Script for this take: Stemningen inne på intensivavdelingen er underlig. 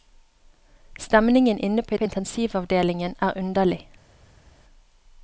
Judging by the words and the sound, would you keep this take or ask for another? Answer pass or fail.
fail